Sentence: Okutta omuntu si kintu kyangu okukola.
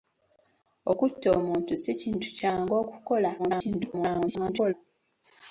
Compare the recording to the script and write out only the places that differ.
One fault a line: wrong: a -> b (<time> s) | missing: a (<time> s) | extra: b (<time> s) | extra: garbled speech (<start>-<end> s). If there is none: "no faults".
extra: garbled speech (3.4-4.7 s)